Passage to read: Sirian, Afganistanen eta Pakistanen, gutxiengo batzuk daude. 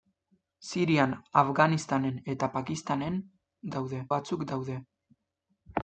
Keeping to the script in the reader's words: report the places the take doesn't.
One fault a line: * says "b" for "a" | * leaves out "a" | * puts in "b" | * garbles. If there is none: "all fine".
* says "daude" for "gutxiengo"